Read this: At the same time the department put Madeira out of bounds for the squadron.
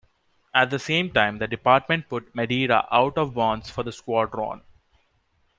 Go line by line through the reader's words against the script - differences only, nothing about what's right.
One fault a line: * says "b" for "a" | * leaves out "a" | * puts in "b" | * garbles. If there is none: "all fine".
all fine